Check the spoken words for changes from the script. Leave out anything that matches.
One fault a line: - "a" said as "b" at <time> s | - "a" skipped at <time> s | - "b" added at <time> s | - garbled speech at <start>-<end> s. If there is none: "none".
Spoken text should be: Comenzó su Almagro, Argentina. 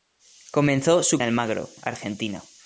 none